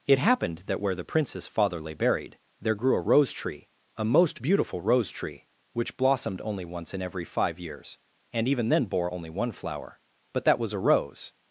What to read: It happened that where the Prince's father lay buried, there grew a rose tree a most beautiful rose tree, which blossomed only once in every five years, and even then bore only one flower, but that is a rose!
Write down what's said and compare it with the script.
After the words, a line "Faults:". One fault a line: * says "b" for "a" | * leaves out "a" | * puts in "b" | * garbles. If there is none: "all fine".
It happened that where the Prince's father lay buried, there grew a rose tree a most beautiful rose tree, which blossomed only once in every five years, and even then bore only one flower, but that was a rose!
Faults:
* says "was" for "is"